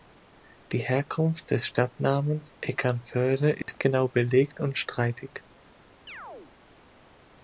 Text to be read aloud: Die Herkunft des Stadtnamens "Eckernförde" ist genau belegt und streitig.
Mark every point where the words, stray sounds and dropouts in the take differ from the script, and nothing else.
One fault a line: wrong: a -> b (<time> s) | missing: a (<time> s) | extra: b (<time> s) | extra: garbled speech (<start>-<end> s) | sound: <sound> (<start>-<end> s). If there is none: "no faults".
sound: dropout (3.6-3.7 s)
sound: chirp (6.1-6.5 s)